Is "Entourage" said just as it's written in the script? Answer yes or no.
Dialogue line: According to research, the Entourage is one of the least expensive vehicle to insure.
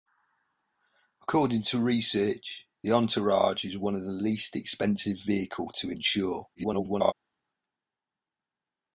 yes